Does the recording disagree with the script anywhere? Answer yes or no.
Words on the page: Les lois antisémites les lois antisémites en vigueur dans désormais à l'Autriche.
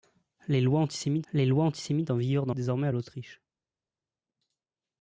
no